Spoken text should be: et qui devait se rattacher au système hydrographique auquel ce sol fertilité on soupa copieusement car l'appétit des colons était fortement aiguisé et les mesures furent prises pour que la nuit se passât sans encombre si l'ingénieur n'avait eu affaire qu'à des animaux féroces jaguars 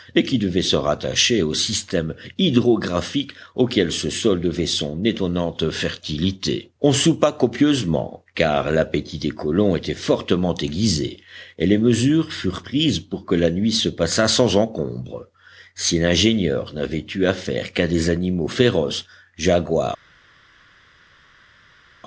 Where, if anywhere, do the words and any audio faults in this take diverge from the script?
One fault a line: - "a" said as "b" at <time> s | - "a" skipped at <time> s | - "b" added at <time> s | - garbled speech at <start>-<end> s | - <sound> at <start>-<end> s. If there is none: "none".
- "devait son étonnante" added at 4.4 s